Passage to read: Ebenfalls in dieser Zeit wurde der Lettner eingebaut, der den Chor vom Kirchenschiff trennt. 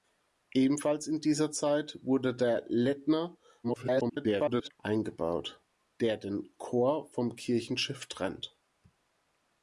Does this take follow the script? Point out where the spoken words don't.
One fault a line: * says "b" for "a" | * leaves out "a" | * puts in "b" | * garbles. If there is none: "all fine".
* garbles